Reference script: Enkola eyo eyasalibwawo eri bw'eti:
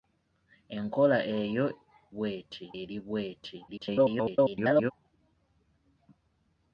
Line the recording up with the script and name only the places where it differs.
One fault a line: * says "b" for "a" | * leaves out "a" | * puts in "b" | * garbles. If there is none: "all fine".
* says "bw'eti" for "eyasalibwawo"
* garbles